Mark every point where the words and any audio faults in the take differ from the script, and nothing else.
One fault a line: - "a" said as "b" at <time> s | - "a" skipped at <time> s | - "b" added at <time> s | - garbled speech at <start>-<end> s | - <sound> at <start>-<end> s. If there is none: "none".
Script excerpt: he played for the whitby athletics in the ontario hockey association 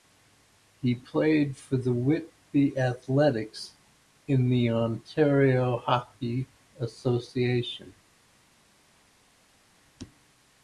none